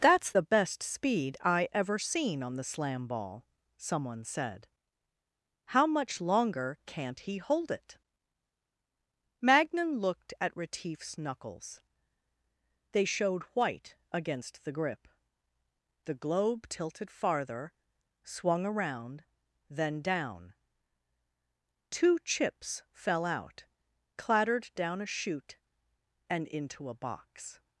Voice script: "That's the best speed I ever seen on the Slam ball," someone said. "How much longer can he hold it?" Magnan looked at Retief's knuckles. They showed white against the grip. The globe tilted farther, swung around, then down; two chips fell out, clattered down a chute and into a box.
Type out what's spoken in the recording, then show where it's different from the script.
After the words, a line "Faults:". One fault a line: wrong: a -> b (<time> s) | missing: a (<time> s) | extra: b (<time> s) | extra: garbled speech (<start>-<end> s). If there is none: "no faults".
"That's the best speed I ever seen on the Slam ball," someone said. "How much longer can't he hold it?" Magnan looked at Retief's knuckles. They showed white against the grip. The globe tilted farther, swung around, then down; two chips fell out, clattered down a chute and into a box.
Faults:
wrong: can -> can't (6.9 s)